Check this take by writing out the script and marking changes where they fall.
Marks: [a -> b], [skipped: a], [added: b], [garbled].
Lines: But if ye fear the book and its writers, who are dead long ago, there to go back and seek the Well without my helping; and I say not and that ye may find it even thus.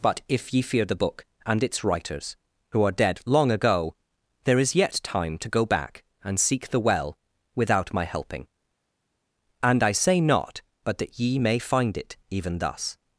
But if ye fear the book and its writers, who are dead long ago, there [added: is yet time] to go back and seek the Well without my helping; and I say not [and -> but] that ye may find it even thus.